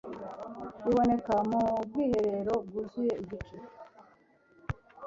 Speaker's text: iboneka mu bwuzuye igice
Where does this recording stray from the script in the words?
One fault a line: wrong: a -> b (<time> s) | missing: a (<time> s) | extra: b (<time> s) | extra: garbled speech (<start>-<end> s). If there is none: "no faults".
extra: bwiherero (1.9 s)